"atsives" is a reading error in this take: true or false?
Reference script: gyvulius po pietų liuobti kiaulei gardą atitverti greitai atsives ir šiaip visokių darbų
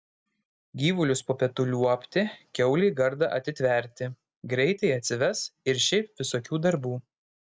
false